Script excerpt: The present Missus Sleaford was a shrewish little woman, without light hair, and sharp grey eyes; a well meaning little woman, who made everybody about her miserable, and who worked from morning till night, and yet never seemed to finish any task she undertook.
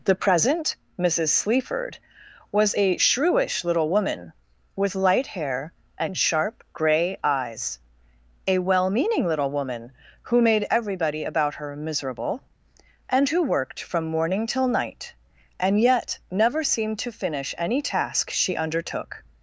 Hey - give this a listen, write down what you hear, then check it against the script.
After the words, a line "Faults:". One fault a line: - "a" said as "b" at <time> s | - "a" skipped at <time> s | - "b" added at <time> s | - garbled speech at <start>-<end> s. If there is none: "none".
The present Missus Sleaford was a shrewish little woman, with light hair, and sharp grey eyes; a well meaning little woman, who made everybody about her miserable, and who worked from morning till night, and yet never seemed to finish any task she undertook.
Faults:
- "without" said as "with" at 4.8 s